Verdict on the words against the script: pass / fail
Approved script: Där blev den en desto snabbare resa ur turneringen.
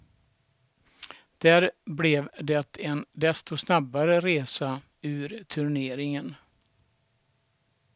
fail